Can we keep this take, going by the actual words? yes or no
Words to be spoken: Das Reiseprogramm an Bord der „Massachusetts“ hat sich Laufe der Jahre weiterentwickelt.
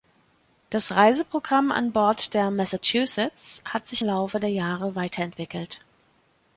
yes